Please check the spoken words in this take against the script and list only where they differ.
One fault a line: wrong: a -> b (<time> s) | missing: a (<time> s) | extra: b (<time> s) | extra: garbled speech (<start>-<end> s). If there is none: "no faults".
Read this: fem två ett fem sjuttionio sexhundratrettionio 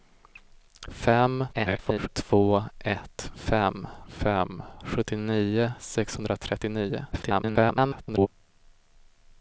extra: garbled speech (1.5-2.1 s)
extra: fem (4.1 s)
extra: garbled speech (7.1-8.3 s)